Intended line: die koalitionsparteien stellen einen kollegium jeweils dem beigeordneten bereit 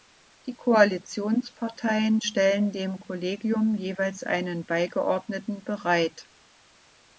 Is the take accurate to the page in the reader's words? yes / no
no